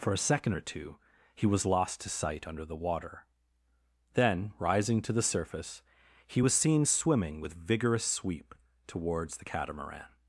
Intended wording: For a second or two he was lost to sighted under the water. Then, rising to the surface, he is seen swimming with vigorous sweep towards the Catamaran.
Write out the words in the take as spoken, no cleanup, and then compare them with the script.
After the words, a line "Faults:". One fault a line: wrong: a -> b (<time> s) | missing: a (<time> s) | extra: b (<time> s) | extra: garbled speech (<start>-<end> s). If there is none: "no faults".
For a second or two he was lost to sight under the water. Then, rising to the surface, he was seen swimming with vigorous sweep towards the Catamaran.
Faults:
wrong: sighted -> sight (2.1 s)
wrong: is -> was (6.4 s)